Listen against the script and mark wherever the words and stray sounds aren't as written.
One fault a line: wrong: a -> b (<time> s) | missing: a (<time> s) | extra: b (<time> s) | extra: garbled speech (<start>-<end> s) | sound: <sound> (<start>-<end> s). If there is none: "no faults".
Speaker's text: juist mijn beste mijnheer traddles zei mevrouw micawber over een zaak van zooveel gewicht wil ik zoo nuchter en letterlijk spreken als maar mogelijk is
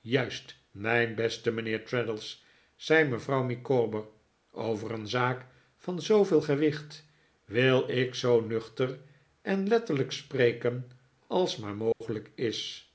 sound: dropout (11.9-12.0 s)